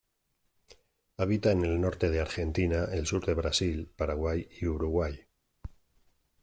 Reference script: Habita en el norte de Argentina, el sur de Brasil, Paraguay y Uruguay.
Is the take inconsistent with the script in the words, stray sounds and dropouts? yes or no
no